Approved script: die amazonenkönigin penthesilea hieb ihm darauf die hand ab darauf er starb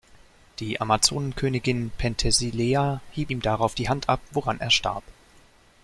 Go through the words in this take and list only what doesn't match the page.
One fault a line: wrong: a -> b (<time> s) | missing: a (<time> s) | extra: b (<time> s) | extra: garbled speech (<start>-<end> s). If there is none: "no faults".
wrong: darauf -> woran (4.3 s)